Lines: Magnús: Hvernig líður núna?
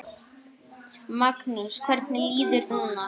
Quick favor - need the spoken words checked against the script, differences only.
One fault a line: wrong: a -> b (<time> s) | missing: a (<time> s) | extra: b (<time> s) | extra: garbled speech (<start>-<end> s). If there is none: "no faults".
no faults